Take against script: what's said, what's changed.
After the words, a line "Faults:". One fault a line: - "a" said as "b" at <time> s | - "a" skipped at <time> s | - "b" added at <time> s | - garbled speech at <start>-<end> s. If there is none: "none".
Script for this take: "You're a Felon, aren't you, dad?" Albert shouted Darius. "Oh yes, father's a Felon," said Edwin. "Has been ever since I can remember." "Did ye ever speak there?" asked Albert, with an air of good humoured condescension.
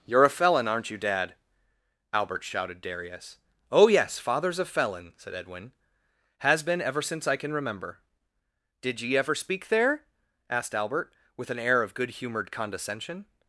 "You're a Felon, aren't you, dad?" Albert shouted Darius. "Oh yes, father's a Felon," said Edwin. "Has been ever since I can remember." "Did ye ever speak there?" asked Albert, with an air of good humoured condescension.
Faults:
none